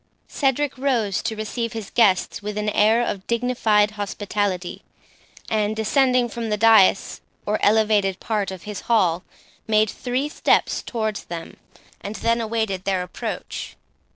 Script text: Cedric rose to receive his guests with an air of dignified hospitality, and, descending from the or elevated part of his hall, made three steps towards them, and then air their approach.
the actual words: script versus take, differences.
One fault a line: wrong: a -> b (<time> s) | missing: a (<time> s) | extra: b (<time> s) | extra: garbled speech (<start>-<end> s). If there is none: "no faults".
extra: dais (6.6 s)
wrong: air -> awaited (12.4 s)